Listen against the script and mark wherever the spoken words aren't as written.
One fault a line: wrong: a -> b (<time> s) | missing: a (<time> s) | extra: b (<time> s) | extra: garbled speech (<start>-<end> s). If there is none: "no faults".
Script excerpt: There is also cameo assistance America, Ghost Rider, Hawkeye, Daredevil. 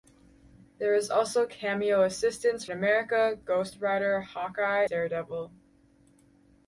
no faults